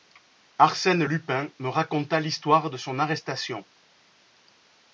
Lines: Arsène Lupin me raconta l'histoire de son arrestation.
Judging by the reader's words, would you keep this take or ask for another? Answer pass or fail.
pass